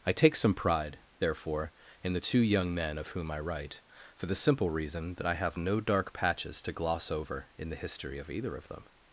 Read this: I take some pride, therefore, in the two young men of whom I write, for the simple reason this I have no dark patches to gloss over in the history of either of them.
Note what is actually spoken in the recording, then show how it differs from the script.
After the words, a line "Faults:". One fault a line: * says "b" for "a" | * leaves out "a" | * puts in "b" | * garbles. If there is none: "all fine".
I take some pride, therefore, in the two young men of whom I write, for the simple reason that I have no dark patches to gloss over in the history of either of them.
Faults:
* says "that" for "this"